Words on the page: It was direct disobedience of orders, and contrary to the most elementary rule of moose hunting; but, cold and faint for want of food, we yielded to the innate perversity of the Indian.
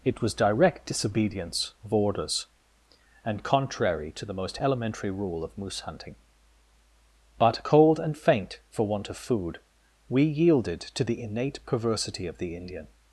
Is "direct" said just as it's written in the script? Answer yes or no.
yes